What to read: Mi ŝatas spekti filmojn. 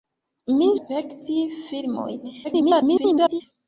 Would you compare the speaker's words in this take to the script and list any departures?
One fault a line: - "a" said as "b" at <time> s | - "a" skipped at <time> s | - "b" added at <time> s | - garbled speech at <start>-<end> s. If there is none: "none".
- "ŝatas" skipped at 0.7 s
- garbled speech at 2.4-3.4 s